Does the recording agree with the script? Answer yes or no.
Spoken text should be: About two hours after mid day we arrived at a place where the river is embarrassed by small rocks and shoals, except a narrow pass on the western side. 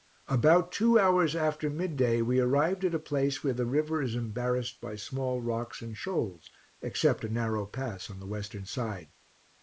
yes